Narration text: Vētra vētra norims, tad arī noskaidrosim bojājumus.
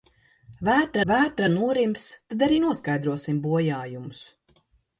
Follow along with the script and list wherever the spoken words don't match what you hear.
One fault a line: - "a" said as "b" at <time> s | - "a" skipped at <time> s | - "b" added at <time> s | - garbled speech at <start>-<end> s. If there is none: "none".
none